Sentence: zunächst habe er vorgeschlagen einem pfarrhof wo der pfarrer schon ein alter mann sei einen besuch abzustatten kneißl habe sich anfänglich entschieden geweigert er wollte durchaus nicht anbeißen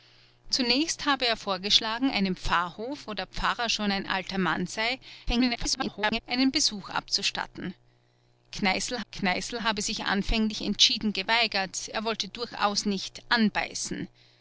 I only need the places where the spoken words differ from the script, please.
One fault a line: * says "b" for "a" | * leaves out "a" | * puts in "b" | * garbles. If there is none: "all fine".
* garbles
* puts in "kneißl"